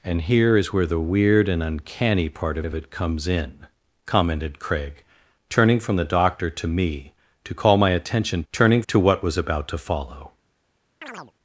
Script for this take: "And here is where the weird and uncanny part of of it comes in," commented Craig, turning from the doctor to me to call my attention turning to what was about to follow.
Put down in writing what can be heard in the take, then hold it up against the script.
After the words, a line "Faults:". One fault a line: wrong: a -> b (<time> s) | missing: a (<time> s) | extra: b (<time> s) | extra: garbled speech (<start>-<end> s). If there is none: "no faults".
"And here is where the weird and uncanny part of of it comes in," commented Craig, turning from the doctor to me to call my attention turning to what was about to follow.
Faults:
no faults